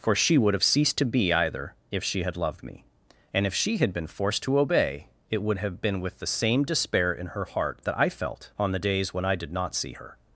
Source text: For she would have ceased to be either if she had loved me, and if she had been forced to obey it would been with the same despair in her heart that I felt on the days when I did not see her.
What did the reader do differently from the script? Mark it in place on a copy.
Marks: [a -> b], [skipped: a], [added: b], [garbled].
For she would have ceased to be either if she had loved me, and if she had been forced to obey it would [added: have] been with the same despair in her heart that I felt on the days when I did not see her.